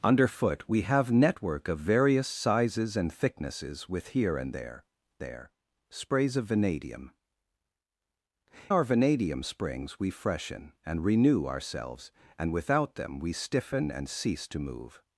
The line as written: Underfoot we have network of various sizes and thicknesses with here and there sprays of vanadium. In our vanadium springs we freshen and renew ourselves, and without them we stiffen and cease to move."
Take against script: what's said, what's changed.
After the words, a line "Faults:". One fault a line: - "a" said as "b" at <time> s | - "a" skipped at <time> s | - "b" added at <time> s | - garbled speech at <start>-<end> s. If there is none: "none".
Underfoot we have network of various sizes and thicknesses with here and there there sprays of vanadium. Our vanadium springs we freshen and renew ourselves, and without them we stiffen and cease to move."
Faults:
- "there" added at 5.2 s
- "In" skipped at 7.1 s